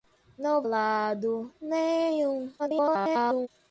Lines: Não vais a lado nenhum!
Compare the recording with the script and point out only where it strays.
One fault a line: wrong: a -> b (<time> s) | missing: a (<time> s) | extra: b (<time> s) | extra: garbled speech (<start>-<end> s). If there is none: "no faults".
missing: vais a (0.6 s)
extra: garbled speech (2.6-3.5 s)